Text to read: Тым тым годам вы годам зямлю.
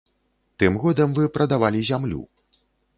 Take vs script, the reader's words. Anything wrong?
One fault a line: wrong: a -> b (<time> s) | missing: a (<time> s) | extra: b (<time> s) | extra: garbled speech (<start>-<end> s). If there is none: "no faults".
missing: тым (0.8 s)
wrong: годам -> прадавалі (1.4 s)